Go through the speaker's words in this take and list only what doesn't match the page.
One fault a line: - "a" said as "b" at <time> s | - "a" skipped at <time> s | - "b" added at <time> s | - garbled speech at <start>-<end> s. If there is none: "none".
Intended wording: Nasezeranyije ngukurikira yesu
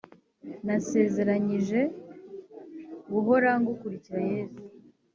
- "guhora" added at 3.1 s